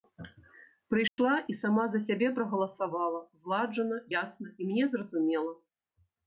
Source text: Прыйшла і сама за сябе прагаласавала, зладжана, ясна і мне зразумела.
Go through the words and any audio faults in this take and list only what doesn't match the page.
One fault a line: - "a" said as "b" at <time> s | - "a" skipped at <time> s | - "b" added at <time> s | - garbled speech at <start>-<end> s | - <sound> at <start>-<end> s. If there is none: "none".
- dropout at 1.1-1.2 s